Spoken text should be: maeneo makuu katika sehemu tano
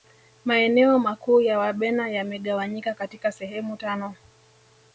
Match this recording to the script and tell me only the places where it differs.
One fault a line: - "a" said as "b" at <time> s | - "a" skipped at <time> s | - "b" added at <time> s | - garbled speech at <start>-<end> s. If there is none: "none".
- "ya wabena yamegawanyika" added at 1.4 s